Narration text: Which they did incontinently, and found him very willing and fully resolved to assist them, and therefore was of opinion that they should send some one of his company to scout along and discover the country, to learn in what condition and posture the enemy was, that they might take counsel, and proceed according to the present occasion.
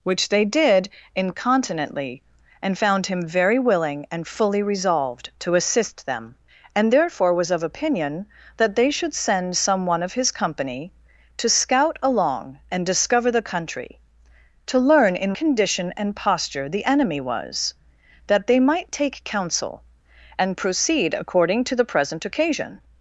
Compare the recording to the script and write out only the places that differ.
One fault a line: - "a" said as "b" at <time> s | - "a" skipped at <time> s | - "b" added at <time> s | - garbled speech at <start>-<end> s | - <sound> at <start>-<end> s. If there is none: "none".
- "what" skipped at 15.3 s